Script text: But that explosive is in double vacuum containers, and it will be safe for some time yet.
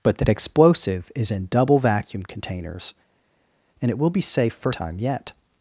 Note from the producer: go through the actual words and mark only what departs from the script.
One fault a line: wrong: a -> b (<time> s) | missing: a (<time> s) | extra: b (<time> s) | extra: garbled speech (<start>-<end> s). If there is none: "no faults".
missing: some (4.7 s)